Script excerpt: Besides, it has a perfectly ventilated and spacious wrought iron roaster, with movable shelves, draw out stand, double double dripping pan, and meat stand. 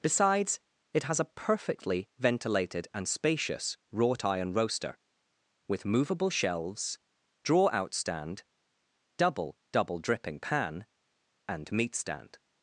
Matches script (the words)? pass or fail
pass